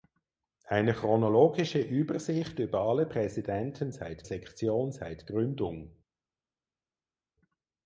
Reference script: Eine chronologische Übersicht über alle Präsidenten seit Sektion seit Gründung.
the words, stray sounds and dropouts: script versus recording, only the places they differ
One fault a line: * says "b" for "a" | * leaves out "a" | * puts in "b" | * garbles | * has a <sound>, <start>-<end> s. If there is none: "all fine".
all fine